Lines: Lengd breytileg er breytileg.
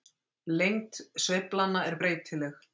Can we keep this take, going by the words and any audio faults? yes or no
no